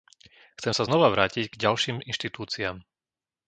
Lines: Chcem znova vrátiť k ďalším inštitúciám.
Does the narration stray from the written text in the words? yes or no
yes